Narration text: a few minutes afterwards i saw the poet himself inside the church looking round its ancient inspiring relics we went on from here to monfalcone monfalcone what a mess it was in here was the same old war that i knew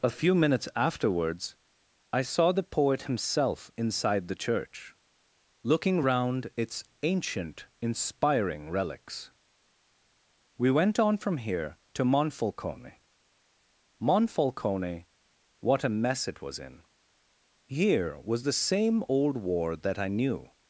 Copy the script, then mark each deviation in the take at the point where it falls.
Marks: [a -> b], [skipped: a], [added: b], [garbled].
a few minutes afterwards i saw the poet himself inside the church looking round its ancient inspiring relics we went on from here to monfalcone monfalcone what a mess it was in here was the same old war that i knew